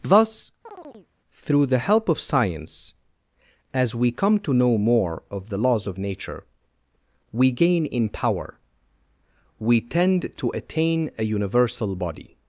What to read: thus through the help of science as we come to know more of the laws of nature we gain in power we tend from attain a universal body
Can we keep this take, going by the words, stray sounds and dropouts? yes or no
no